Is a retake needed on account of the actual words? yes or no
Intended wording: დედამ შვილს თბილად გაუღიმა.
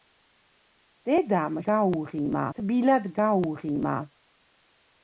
yes